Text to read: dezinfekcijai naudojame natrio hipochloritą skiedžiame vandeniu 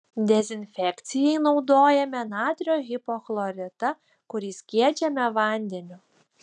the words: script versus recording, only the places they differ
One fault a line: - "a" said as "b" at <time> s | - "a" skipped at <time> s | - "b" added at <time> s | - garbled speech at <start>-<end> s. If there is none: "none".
- "kurį" added at 4.3 s